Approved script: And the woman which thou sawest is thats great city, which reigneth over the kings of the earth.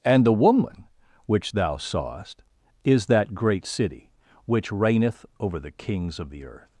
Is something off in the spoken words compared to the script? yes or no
yes